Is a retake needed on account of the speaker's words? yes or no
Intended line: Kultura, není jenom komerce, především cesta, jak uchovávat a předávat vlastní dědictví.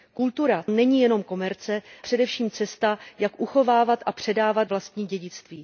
no